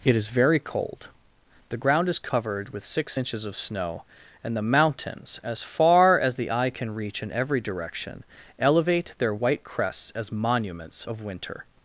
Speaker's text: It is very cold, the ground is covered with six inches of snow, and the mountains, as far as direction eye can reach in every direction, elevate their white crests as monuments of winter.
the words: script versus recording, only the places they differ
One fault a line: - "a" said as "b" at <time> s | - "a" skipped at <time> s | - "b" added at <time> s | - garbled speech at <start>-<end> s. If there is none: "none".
- "direction" said as "the" at 6.3 s